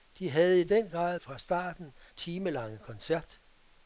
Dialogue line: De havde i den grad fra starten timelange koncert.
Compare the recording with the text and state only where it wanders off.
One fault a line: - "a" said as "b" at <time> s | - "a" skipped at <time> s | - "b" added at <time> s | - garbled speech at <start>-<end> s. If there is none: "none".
none